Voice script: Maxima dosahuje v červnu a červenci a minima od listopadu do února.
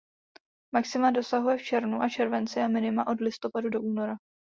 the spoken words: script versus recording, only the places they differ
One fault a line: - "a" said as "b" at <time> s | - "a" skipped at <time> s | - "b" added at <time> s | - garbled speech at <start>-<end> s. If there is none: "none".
none